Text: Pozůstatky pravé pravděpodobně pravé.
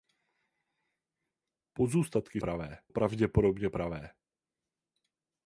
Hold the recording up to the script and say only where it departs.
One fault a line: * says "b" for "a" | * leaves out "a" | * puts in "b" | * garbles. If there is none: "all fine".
all fine